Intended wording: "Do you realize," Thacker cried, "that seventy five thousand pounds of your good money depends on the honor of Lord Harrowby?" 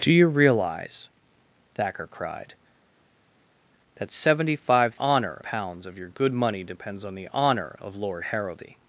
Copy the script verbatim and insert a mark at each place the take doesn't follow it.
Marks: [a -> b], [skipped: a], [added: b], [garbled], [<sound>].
"Do you realize," Thacker cried, "that seventy five [thousand -> honor] pounds of your good money depends on the honor of Lord Harrowby?"